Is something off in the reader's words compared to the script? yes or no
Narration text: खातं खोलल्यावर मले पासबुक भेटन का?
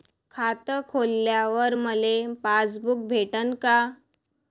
no